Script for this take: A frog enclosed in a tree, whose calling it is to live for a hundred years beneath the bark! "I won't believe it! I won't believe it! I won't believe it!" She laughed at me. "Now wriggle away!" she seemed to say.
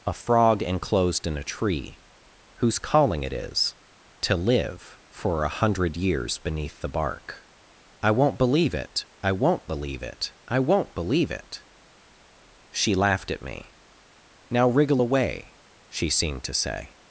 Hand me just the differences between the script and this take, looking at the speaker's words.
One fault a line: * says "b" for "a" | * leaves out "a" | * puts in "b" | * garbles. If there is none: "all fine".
all fine